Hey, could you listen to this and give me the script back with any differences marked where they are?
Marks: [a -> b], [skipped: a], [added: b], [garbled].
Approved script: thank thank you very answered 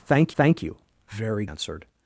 thank thank you very answered